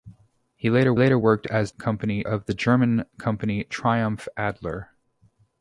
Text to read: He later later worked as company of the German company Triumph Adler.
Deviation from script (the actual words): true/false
false